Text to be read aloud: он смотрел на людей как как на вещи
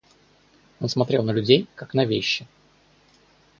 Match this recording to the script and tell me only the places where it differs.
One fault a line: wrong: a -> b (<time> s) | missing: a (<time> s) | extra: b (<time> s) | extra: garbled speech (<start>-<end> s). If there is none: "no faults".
missing: как (1.9 s)